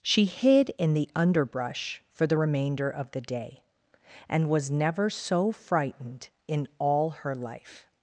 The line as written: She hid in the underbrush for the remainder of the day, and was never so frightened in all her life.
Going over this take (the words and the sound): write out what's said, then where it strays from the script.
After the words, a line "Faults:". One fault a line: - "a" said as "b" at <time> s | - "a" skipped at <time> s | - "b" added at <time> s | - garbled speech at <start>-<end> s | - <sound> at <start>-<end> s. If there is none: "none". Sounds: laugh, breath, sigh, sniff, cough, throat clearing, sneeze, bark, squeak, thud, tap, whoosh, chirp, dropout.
She hid in the underbrush for the remainder of the day, and was never so frightened in all her life.
Faults:
none